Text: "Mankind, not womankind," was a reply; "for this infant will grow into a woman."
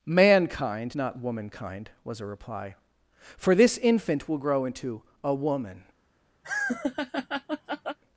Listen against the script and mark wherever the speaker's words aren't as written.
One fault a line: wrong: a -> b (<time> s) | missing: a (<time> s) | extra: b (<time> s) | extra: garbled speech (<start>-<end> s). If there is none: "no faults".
no faults